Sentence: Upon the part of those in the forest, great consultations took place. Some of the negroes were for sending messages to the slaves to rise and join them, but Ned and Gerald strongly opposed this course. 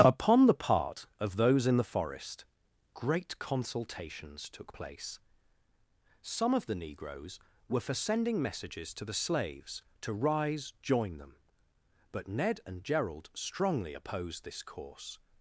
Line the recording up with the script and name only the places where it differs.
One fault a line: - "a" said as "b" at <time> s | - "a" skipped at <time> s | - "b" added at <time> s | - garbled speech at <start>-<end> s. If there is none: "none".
- "and" skipped at 10.7 s